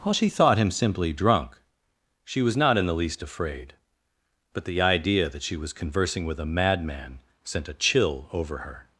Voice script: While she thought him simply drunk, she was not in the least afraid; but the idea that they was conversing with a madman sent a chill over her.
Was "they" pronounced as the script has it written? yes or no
no